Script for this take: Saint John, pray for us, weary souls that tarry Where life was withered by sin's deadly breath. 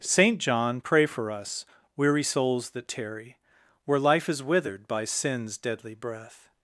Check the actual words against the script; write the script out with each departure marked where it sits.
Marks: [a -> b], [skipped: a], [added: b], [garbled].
Saint John, pray for us, weary souls that tarry Where life [was -> is] withered by sin's deadly breath.